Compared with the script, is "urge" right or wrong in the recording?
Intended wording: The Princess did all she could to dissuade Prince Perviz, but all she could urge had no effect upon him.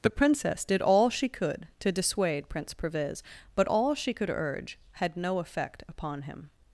right